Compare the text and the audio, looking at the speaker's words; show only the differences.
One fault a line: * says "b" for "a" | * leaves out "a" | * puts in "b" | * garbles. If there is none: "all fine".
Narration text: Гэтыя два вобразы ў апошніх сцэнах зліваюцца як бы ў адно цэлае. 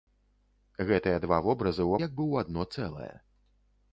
* leaves out "апошніх сцэнах зліваюцца"